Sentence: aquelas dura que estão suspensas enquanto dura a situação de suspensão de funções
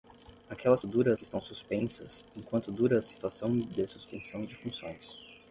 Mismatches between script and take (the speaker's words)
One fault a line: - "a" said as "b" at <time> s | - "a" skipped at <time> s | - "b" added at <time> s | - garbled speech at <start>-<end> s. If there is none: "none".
none